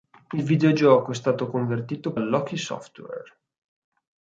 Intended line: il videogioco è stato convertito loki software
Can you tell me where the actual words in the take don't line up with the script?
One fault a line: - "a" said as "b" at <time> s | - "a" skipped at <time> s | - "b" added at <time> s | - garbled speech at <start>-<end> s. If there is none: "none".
none